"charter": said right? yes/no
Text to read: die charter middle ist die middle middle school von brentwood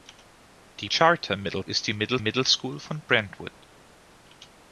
yes